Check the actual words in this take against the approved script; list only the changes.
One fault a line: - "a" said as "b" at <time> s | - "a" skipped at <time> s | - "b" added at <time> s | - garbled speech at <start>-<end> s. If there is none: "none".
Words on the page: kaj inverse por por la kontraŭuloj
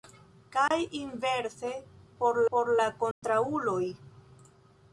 none